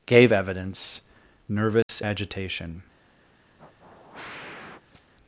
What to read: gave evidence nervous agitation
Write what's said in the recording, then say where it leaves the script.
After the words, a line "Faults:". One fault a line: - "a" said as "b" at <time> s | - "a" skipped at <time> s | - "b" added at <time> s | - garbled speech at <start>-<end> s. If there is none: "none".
gave evidence nervous agitation
Faults:
none